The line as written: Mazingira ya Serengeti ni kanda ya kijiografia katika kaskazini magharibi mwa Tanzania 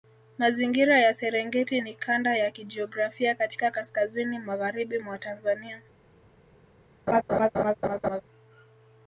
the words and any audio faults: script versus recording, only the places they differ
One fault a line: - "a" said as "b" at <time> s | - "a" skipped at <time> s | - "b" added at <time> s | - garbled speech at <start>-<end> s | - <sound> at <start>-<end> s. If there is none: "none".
- laugh at 7.1-8.2 s